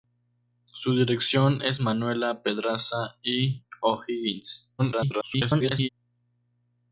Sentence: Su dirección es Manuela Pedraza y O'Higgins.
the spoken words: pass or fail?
fail